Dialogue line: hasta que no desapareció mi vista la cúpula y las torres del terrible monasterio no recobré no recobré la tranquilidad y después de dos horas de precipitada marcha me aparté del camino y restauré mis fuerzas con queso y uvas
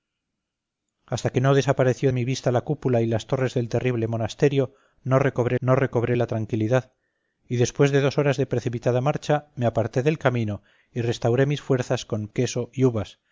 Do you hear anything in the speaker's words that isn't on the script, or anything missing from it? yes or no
no